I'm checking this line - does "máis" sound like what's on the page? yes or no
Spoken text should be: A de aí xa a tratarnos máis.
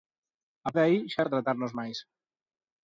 yes